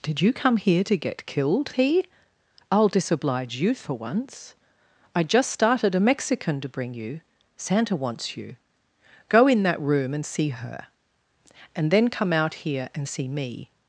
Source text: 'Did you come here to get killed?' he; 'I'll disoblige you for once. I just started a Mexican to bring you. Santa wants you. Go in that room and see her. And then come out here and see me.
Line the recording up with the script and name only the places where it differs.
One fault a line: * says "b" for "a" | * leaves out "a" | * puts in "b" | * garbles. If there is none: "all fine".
all fine